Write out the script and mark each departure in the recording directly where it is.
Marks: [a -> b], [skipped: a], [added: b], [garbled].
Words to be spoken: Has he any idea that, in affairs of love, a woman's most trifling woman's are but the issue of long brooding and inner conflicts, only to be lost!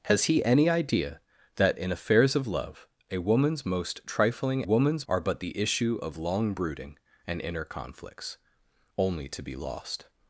Has he any idea that, in affairs of love, a woman's most trifling woman's are but the issue of long brooding and inner conflicts, only to be lost!